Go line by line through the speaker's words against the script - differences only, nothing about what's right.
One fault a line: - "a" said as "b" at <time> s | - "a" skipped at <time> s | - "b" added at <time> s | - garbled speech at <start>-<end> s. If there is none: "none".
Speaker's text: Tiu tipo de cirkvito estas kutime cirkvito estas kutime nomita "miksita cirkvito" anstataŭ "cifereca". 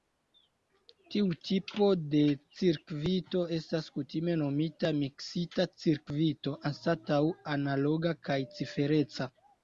- "cirkvito estas kutime" skipped at 4.4 s
- "analoga kaj" added at 7.6 s